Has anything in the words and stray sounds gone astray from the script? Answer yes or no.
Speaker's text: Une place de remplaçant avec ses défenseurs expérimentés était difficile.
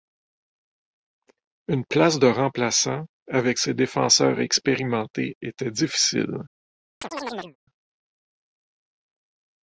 yes